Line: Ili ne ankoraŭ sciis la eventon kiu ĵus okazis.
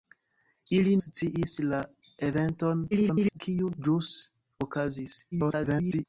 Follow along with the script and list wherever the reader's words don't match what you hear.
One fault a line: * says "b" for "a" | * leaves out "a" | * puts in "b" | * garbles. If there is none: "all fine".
* leaves out "ne ankoraŭ"
* garbles
* garbles